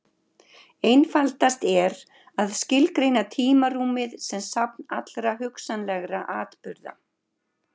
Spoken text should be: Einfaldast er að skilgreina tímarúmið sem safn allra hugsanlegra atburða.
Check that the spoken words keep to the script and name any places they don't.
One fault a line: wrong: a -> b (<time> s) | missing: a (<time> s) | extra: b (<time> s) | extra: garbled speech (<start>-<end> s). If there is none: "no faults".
no faults